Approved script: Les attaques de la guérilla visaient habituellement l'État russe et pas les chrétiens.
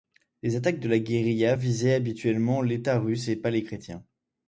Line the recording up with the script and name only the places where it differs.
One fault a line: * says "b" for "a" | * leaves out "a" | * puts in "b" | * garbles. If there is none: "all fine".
all fine